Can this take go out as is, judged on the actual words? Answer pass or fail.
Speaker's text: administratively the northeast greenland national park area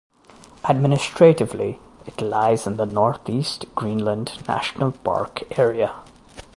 fail